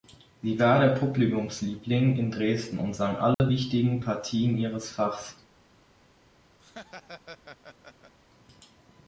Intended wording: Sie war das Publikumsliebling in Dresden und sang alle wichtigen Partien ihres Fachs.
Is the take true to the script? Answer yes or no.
no